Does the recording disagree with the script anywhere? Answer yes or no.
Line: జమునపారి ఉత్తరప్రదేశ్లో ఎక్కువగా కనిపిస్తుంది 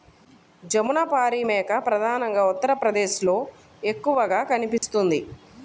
yes